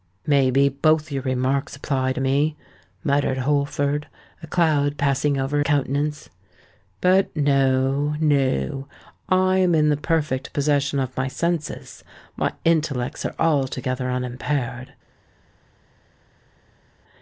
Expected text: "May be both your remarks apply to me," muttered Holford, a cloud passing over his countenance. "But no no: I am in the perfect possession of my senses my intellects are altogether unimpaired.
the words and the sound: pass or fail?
fail